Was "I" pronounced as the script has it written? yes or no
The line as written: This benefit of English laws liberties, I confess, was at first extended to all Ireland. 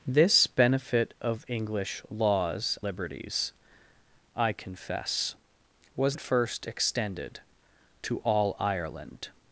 yes